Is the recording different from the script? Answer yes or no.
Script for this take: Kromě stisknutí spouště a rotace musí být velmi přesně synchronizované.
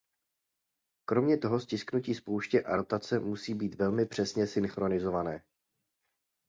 yes